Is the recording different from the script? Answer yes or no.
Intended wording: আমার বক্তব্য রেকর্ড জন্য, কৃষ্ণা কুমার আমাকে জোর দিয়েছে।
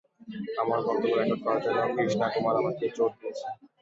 yes